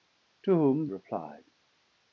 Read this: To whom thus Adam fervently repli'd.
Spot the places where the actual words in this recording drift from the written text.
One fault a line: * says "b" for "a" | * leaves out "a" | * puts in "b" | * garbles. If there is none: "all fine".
* leaves out "thus Adam fervently"